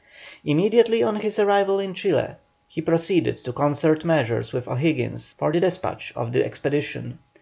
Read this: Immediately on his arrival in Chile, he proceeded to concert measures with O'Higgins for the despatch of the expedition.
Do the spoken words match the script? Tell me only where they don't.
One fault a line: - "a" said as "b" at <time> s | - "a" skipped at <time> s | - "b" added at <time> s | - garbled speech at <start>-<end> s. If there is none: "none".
none